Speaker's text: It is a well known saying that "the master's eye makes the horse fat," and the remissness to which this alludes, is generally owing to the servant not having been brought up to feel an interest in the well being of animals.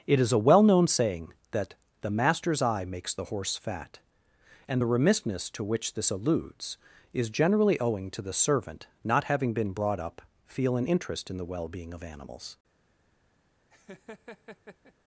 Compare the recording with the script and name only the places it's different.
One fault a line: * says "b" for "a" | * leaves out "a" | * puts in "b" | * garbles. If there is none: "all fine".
* leaves out "to"